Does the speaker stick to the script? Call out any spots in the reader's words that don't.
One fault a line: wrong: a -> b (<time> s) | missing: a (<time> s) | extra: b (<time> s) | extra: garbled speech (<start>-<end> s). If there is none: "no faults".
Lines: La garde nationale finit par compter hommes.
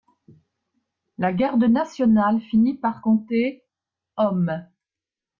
no faults